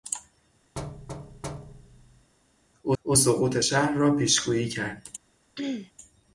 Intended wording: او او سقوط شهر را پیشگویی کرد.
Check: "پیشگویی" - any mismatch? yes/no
no